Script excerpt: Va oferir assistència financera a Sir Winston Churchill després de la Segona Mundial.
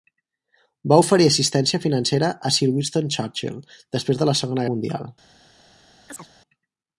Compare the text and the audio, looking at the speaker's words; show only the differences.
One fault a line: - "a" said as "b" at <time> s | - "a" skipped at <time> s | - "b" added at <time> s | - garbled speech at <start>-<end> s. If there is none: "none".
none